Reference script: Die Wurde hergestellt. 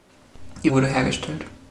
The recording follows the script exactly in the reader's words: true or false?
true